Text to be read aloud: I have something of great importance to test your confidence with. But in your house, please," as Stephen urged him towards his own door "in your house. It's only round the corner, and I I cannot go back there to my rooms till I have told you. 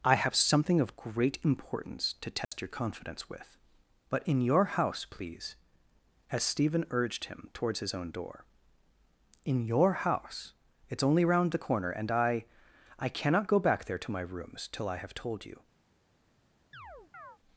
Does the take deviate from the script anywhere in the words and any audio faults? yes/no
yes